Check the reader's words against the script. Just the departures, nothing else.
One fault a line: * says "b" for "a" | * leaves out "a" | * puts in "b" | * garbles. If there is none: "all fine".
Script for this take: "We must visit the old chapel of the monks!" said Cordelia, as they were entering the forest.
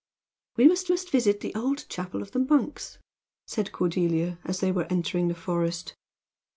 * puts in "must"